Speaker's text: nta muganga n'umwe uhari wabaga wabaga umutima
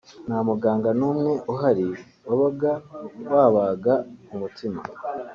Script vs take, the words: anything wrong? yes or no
no